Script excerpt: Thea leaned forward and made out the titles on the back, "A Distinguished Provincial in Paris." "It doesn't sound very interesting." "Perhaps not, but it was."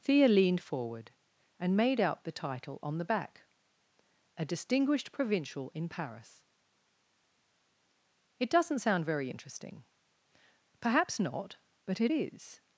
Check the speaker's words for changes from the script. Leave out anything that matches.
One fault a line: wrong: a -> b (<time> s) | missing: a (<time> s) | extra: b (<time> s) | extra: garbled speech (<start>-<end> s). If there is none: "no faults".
wrong: titles -> title (2.3 s)
wrong: was -> is (12.1 s)